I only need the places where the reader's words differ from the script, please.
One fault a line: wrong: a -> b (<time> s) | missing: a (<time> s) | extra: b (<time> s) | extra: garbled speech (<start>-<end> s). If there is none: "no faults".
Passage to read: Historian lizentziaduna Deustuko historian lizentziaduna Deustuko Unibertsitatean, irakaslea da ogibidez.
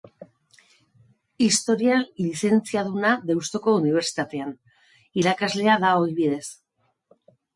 missing: historian lizentziaduna Deustuko (3.8 s)